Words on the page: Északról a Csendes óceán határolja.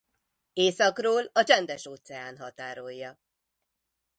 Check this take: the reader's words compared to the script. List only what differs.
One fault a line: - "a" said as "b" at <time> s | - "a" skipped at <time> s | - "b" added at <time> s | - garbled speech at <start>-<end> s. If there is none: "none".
none